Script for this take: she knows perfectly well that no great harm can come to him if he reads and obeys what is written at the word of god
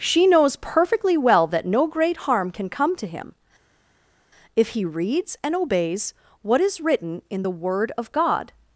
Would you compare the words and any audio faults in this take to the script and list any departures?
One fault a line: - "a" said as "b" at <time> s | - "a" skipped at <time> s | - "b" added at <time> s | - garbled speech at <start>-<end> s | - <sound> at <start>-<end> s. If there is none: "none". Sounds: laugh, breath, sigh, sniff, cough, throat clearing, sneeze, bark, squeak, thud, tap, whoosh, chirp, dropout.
- "at" said as "in" at 7.3 s